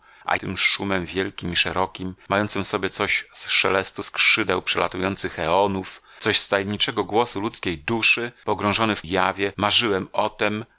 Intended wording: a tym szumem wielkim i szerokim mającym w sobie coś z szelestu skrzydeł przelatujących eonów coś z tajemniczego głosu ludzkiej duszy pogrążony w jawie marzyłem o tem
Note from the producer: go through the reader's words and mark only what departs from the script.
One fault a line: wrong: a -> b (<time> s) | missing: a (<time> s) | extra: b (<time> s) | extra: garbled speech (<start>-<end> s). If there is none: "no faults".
no faults